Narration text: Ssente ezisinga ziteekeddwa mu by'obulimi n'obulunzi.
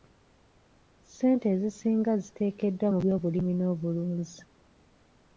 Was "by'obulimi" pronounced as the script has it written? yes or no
yes